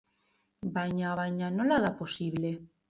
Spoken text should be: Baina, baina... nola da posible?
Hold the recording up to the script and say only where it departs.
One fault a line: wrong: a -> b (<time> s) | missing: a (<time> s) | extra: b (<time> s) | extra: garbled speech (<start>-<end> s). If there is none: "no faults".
no faults